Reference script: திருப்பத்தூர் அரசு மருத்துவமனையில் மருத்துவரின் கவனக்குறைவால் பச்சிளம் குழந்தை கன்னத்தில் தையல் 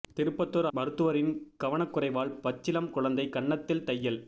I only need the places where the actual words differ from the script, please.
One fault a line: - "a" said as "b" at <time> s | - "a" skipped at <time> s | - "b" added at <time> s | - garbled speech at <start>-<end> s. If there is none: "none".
- "அரசு மருத்துவமனையில்" skipped at 0.7 s